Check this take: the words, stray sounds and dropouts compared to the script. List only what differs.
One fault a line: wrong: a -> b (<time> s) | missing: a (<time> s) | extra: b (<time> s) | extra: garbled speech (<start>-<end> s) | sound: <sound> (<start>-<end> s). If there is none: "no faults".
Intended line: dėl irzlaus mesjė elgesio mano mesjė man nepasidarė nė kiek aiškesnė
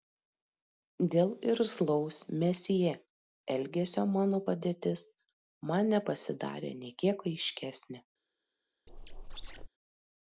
wrong: mesjė -> padėtis (4.5 s)
sound: squeak (8.9-9.7 s)